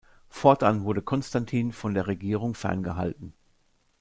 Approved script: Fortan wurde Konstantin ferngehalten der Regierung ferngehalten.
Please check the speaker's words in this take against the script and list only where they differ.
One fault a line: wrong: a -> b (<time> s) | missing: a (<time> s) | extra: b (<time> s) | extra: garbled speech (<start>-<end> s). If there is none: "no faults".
wrong: ferngehalten -> von (1.7 s)